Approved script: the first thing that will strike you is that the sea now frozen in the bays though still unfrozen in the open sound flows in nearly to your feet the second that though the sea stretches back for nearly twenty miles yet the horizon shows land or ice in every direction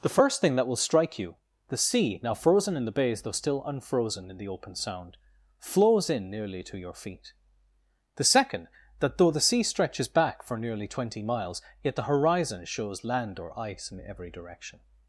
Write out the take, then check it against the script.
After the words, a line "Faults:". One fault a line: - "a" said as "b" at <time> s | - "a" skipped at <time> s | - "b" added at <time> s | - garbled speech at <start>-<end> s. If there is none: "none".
the first thing that will strike you the sea now frozen in the bays though still unfrozen in the open sound flows in nearly to your feet the second that though the sea stretches back for nearly twenty miles yet the horizon shows land or ice in every direction
Faults:
- "is that" skipped at 1.4 s